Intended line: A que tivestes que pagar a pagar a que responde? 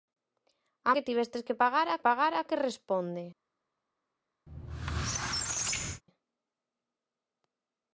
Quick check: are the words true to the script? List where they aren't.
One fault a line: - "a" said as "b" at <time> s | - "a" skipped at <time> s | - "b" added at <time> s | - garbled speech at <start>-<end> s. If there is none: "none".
none